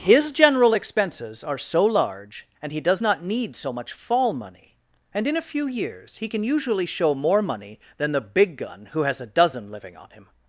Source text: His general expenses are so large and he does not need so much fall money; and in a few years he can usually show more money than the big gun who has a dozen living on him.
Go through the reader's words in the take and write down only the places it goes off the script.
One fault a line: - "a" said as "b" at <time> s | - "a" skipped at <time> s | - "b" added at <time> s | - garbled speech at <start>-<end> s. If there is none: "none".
none